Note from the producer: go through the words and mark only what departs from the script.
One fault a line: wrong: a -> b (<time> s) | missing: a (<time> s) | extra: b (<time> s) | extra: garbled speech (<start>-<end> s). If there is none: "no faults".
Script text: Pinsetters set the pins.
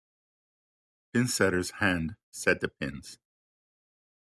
extra: hand (1.8 s)